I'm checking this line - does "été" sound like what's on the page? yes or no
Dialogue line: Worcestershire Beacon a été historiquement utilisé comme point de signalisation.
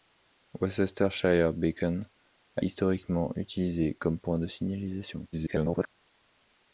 no